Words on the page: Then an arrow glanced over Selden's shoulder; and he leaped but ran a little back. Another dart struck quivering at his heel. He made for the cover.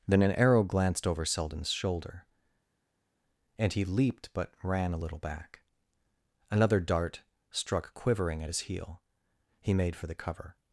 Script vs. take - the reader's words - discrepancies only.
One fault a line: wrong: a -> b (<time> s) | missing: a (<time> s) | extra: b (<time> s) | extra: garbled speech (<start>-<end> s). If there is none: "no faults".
no faults